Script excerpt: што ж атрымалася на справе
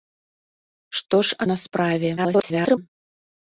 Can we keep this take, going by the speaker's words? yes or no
no